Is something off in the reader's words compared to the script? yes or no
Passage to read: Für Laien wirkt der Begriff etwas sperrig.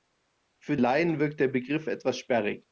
no